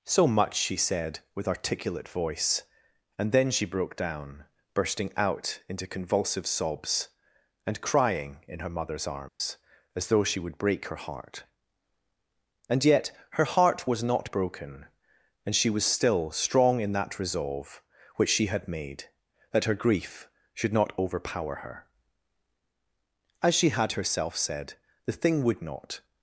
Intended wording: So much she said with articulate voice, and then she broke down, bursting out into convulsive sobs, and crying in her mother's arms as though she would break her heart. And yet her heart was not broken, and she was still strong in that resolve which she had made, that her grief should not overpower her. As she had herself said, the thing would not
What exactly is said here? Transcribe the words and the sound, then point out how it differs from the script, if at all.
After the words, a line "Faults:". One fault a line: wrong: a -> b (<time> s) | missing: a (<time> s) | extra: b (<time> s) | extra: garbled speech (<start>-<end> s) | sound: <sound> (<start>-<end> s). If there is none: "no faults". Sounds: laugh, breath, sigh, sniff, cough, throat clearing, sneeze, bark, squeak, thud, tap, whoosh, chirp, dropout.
So much she said with articulate voice, and then she broke down, bursting out into convulsive sobs, and crying in her mother's arms as though she would break her heart. And yet her heart was not broken, and she was still strong in that resolve which she had made, that her grief should not overpower her. As she had herself said, the thing would not
Faults:
sound: dropout (9.3-9.4 s)